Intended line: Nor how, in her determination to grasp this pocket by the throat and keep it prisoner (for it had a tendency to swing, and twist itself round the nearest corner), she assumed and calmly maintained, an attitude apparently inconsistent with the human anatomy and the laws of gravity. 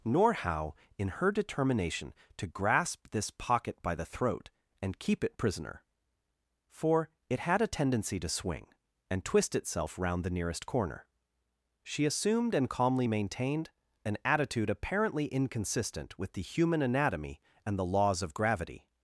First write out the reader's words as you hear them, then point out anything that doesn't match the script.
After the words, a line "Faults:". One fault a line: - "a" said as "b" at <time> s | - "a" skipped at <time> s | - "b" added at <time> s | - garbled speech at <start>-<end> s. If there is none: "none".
Nor how, in her determination to grasp this pocket by the throat and keep it prisoner (for it had a tendency to swing, and twist itself round the nearest corner), she assumed and calmly maintained, an attitude apparently inconsistent with the human anatomy and the laws of gravity.
Faults:
none